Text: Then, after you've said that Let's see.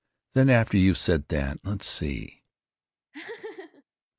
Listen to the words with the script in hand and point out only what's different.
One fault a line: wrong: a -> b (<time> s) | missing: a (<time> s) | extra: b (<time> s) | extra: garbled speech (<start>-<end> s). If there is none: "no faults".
no faults